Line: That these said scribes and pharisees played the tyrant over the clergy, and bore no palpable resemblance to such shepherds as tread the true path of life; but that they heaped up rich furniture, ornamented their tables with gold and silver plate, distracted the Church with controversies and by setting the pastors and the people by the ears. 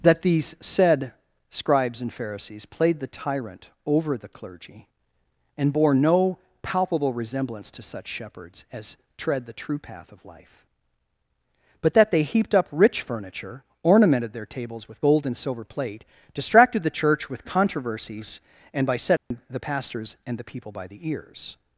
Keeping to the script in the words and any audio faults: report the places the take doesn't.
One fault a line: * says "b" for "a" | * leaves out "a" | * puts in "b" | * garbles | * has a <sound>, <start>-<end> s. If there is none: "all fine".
* has a dropout, 19.2-19.3 s